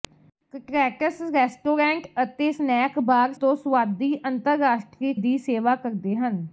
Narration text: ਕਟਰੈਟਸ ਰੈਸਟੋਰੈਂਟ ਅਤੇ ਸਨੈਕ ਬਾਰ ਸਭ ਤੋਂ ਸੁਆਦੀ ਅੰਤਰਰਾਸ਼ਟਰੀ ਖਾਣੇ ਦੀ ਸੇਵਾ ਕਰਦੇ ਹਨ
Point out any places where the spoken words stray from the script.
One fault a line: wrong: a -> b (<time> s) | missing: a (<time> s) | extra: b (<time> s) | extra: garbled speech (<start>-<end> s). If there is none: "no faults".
missing: ਸਭ (3.3 s)
missing: ਖਾਣੇ (5.1 s)